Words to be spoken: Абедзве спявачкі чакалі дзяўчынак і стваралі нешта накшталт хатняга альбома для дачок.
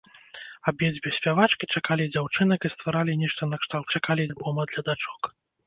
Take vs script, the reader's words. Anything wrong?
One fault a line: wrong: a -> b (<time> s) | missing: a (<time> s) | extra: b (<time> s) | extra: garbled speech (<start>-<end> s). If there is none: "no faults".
wrong: хатняга -> чакалі (4.0 s)